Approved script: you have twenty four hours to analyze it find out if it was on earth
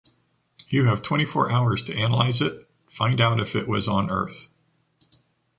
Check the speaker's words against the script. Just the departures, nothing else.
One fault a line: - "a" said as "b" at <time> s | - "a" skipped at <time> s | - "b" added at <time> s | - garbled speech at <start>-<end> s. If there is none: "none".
none